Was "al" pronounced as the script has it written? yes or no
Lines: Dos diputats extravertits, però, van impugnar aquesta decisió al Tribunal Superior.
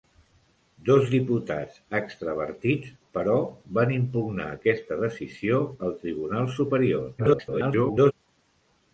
yes